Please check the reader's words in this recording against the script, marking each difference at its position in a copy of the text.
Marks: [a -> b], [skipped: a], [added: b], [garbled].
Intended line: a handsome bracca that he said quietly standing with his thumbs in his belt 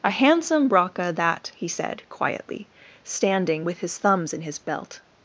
a handsome bracca that he said quietly standing with his thumbs in his belt